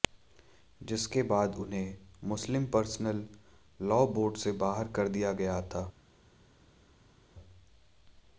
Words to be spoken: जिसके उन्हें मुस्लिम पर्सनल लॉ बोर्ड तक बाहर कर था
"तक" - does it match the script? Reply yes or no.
no